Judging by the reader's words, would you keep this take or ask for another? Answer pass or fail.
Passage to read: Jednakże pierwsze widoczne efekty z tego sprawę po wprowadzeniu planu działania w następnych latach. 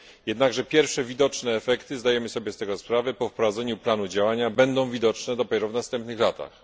fail